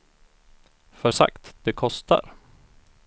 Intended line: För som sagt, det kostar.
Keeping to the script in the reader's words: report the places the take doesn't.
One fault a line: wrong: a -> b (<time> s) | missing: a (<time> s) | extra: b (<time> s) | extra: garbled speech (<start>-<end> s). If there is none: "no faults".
missing: som (1.1 s)